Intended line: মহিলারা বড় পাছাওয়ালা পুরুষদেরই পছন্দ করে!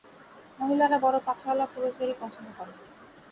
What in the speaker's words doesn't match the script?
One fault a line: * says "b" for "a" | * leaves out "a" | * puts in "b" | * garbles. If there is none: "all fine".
all fine